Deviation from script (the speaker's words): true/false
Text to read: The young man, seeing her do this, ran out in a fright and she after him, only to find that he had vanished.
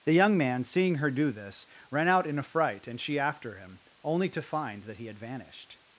false